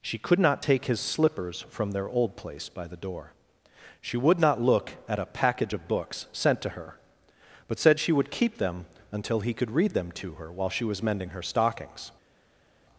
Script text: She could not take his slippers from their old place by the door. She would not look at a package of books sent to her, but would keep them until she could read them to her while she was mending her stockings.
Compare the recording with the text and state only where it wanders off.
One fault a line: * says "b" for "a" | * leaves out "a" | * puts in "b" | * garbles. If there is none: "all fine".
* puts in "said she"
* says "he" for "she"